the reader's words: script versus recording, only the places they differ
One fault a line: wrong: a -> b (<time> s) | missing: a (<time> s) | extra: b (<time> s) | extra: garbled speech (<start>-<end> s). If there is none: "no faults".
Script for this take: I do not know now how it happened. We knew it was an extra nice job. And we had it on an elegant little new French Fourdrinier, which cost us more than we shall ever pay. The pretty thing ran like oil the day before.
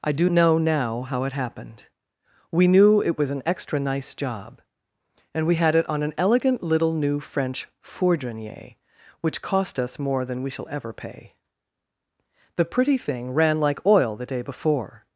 missing: not (0.3 s)